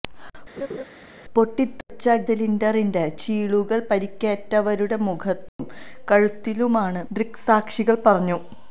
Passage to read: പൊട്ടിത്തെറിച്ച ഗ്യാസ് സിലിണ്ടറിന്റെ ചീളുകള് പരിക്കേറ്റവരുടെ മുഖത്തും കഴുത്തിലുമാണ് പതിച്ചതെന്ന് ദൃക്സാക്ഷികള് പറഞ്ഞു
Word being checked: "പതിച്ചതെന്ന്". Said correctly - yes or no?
no